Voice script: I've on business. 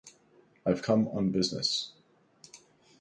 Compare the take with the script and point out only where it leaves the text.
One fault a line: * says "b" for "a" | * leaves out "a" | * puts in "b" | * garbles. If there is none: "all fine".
* puts in "come"